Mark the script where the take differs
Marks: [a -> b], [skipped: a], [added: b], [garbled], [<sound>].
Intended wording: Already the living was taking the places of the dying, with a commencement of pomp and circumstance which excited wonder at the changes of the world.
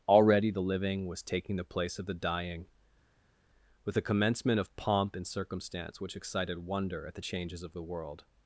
Already the living was taking the [places -> place] of the dying, with a commencement of pomp and circumstance which excited wonder at the changes of the world.